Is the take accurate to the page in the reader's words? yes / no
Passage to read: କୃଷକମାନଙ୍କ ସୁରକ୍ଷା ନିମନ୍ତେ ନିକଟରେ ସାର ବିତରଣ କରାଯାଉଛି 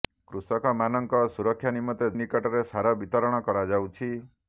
yes